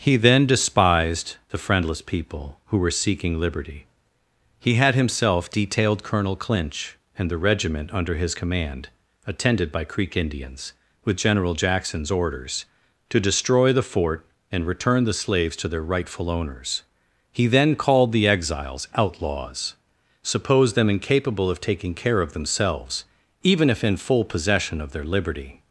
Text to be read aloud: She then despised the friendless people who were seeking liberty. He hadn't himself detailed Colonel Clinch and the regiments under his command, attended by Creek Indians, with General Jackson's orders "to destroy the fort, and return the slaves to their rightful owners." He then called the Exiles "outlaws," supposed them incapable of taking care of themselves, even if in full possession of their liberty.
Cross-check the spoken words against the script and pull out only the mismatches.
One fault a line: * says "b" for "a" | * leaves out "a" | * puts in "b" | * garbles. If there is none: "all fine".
* says "He" for "She"
* says "had" for "hadn't"
* says "regiment" for "regiments"